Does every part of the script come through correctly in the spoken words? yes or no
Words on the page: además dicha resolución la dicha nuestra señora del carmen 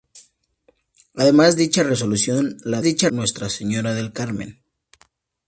yes